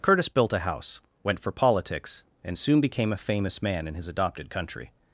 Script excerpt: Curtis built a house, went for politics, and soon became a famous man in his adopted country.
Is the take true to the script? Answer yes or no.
yes